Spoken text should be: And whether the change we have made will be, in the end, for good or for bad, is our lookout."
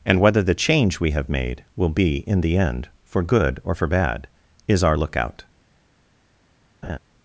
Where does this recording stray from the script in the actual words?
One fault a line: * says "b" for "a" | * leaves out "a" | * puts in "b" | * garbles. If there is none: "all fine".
all fine